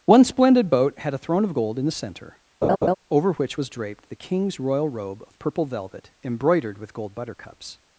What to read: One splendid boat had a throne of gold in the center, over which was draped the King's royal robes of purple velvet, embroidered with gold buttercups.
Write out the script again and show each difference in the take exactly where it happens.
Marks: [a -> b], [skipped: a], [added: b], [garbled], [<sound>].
One splendid boat had a throne of gold in the center, [laugh] over which was draped the King's royal [robes -> robe] of purple velvet, embroidered with gold buttercups.